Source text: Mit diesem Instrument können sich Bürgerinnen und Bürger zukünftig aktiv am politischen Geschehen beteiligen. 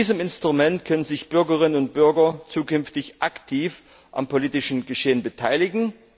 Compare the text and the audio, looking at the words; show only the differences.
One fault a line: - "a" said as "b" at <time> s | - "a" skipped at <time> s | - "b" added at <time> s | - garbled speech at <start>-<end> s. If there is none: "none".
none